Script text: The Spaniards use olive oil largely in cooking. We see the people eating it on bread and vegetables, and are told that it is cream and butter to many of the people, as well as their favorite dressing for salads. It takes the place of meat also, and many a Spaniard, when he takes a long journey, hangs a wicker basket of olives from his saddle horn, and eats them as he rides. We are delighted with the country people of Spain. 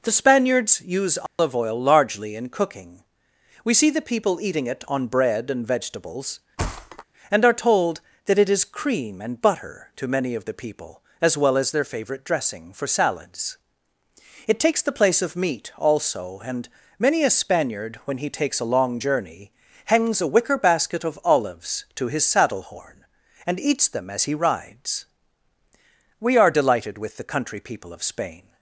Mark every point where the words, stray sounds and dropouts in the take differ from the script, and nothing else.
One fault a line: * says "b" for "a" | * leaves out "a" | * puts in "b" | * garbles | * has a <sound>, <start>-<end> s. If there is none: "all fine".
* has a dropout, 1.3-1.4 s
* has a thud, 6.6-7.0 s
* says "to" for "from"